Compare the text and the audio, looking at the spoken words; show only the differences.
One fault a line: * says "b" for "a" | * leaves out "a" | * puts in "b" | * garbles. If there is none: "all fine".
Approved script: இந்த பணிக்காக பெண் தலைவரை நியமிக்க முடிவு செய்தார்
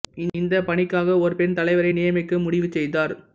* puts in "ஒரு"